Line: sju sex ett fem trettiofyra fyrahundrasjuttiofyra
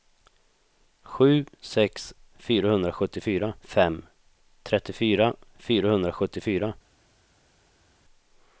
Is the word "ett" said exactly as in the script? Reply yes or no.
no